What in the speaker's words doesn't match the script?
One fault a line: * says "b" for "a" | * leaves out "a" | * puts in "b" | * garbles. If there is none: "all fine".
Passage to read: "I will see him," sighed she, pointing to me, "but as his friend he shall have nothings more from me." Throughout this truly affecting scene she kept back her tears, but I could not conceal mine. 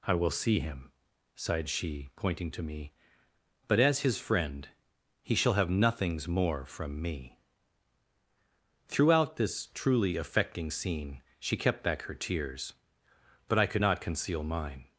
all fine